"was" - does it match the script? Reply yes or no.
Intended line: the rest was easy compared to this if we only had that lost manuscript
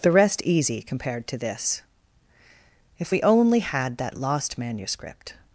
no